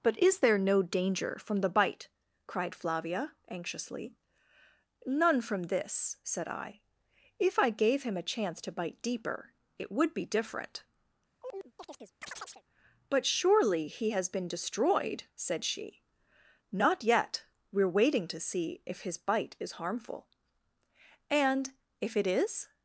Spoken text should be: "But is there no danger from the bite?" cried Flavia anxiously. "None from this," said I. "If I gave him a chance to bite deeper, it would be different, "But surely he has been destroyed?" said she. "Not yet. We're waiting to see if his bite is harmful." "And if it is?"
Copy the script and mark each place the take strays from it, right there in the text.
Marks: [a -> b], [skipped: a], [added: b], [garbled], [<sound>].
"But is there no danger from the bite?" cried Flavia anxiously. "None from this," said I. "If I gave him a chance to bite deeper, it would be different, [chirp] "But surely he has been destroyed?" said she. "Not yet. We're waiting to see if his bite is harmful." "And if it is?"